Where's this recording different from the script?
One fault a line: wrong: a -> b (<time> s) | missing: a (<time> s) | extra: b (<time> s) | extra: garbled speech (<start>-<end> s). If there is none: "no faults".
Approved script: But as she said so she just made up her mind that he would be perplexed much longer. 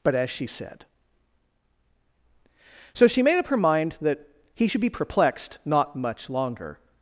missing: just (3.2 s)
wrong: would -> should (4.7 s)
extra: not (5.6 s)